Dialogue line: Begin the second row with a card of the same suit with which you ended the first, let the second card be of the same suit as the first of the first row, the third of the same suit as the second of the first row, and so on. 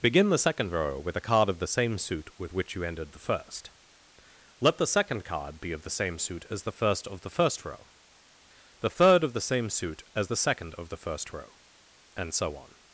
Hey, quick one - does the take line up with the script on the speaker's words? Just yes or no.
yes